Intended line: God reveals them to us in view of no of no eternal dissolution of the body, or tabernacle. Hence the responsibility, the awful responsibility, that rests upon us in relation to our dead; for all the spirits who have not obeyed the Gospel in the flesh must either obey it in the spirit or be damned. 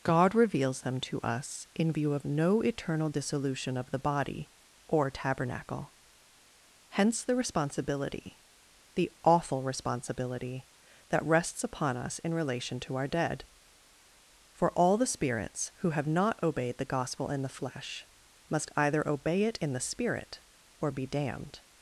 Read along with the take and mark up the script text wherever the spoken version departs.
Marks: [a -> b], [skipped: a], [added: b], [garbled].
God reveals them to us in view of no [skipped: of no] eternal dissolution of the body, or tabernacle. Hence the responsibility, the awful responsibility, that rests upon us in relation to our dead; for all the spirits who have not obeyed the Gospel in the flesh must either obey it in the spirit or be damned.